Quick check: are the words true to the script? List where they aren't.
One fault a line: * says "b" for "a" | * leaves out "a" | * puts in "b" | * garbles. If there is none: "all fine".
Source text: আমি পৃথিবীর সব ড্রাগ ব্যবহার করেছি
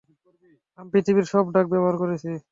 all fine